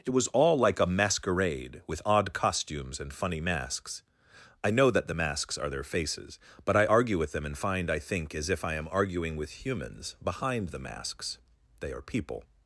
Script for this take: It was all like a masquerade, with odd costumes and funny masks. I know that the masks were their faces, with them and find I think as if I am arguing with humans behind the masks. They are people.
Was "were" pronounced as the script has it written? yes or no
no